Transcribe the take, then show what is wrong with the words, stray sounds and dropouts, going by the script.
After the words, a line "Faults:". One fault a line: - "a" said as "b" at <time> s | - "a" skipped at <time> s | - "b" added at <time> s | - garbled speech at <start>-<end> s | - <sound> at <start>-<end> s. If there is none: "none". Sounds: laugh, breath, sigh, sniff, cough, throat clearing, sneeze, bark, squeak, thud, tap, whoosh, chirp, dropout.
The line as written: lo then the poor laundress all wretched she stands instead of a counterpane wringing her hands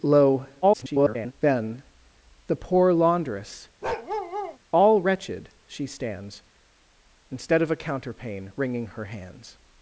lo [garbled] then the poor laundress all wretched she stands instead of a counterpane wringing her hands
Faults:
- garbled speech at 0.6-1.3 s
- bark at 3.8-4.6 s